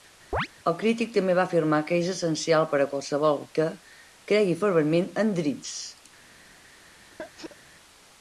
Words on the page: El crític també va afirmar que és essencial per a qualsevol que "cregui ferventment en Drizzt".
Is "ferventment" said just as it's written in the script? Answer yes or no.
yes